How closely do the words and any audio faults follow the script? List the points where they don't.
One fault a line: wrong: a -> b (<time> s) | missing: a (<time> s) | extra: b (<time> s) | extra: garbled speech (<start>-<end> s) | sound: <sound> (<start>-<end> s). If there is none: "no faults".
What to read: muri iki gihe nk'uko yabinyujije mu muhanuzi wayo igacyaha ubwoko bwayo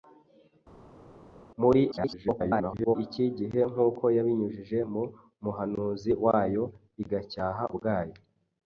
extra: garbled speech (1.9-3.0 s)
missing: ubwoko (7.6 s)